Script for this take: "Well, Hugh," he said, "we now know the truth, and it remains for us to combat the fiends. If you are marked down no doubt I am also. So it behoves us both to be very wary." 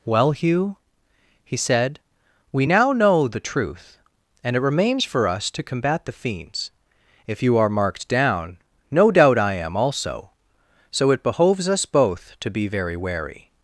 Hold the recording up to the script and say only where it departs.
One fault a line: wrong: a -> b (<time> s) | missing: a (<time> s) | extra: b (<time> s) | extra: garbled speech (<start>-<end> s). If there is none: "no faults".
no faults